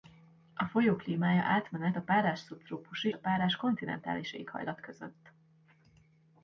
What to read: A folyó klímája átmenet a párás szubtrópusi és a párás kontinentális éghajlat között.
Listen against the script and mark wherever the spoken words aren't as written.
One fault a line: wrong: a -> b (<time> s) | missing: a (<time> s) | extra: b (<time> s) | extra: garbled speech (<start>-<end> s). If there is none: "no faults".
missing: és (3.1 s)